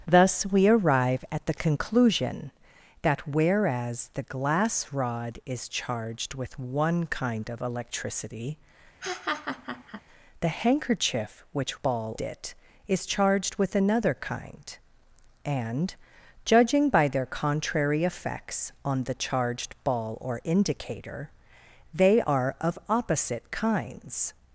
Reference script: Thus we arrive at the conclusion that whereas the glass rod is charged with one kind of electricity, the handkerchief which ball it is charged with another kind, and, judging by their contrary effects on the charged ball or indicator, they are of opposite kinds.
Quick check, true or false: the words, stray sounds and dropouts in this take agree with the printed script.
false